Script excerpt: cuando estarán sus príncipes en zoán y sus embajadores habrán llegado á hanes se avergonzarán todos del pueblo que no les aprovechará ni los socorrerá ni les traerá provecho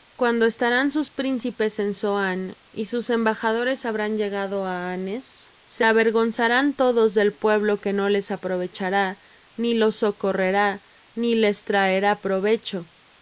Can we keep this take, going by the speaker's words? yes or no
yes